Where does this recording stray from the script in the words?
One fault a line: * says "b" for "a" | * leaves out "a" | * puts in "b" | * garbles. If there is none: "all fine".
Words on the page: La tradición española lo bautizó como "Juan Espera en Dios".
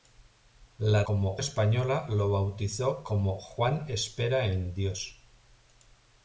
* says "como" for "tradición"